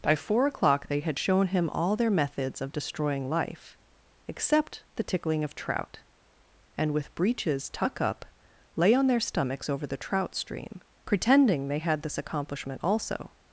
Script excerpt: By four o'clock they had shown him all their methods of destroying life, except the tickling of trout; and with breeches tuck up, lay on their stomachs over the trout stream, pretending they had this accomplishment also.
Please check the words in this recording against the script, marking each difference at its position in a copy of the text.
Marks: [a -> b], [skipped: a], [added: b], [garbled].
By four o'clock they had shown him all their methods of destroying life, except the tickling of trout; and with breeches tuck up, lay on their stomachs over the trout stream, pretending they had this accomplishment also.